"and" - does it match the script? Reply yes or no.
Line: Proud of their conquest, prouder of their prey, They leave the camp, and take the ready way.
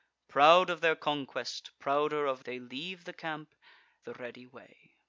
no